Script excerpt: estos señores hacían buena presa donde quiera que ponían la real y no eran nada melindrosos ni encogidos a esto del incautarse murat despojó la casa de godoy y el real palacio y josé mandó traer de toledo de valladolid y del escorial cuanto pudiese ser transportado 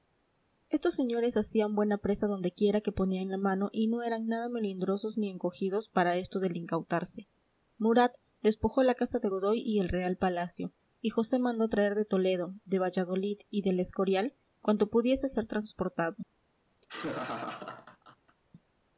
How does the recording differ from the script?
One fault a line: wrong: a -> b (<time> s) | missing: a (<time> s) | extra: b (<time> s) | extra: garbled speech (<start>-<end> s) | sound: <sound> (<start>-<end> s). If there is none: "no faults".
wrong: real -> mano (3.4 s)
wrong: a -> para (5.9 s)
sound: laugh (16.8-18.4 s)